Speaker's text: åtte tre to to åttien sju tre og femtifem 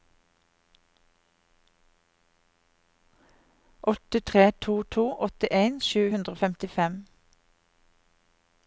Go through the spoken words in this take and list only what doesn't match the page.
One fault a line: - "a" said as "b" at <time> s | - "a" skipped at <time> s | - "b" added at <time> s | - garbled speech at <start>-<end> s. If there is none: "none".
- "tre" said as "hundre" at 6.1 s